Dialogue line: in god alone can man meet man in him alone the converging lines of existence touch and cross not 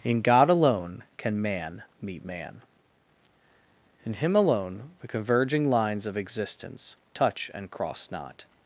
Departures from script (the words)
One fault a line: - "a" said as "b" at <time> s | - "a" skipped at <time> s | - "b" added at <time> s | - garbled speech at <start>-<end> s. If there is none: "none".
none